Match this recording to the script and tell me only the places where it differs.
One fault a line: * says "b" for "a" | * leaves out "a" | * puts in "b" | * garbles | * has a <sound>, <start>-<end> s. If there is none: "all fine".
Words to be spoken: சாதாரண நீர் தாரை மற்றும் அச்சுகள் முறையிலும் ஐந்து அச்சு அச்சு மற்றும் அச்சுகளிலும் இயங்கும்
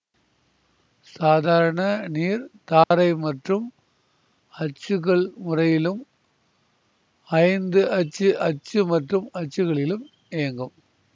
* has a dropout, 2.8-2.9 s